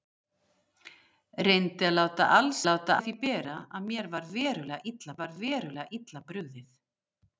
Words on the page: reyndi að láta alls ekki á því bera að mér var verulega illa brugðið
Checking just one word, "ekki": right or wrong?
wrong